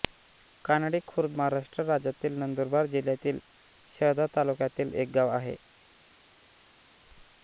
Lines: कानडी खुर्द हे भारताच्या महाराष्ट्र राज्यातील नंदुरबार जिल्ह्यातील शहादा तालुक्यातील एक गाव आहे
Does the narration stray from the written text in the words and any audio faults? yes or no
yes